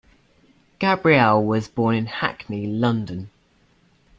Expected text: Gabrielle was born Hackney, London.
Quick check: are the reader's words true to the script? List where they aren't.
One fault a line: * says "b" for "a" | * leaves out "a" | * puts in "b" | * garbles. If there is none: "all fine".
* puts in "in"